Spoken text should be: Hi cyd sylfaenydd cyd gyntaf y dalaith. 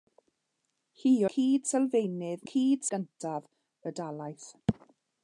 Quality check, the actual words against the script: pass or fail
pass